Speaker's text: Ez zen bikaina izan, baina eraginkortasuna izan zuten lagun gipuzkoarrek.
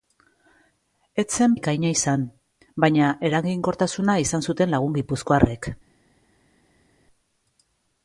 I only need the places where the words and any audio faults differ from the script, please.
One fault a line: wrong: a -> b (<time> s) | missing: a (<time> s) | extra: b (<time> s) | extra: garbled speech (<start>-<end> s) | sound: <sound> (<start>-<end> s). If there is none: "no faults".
no faults